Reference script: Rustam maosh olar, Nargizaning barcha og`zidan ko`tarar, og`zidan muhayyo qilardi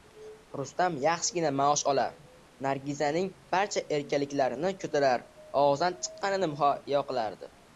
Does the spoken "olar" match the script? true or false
true